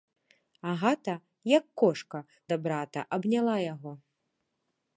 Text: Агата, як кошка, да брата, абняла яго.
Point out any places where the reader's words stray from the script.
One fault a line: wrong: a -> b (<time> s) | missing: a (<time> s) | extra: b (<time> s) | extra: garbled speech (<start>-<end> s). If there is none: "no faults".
no faults